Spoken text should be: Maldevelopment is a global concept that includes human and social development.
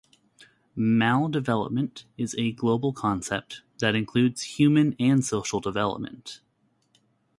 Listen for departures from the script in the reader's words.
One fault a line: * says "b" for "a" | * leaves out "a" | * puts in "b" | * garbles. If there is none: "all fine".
all fine